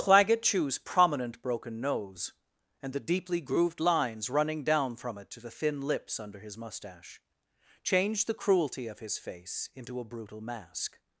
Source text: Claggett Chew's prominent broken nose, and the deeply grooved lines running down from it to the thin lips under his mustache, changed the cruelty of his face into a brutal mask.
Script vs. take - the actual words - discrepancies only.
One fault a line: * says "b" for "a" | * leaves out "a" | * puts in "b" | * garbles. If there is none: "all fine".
all fine